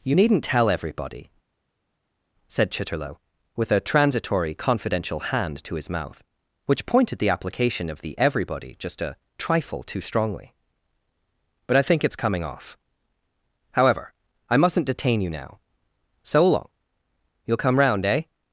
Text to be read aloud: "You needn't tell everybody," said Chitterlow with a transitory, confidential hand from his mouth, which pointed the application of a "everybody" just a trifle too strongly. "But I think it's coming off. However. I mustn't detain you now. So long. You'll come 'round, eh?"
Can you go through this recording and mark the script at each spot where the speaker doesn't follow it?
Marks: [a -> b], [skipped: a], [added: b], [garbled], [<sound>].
"You needn't tell everybody," said Chitterlow with a transitory, confidential hand [from -> to] his mouth, which pointed the application of [a -> the] "everybody" just a trifle too strongly. "But I think it's coming off. However. I mustn't detain you now. So long. You'll come 'round, eh?"